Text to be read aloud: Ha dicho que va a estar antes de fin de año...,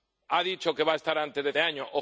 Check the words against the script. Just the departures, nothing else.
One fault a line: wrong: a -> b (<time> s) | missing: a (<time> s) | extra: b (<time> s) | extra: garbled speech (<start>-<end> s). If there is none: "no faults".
missing: fin (1.5 s)